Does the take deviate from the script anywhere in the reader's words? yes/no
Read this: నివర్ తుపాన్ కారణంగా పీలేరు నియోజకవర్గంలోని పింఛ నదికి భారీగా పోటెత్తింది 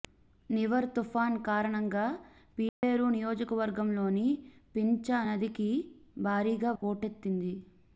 no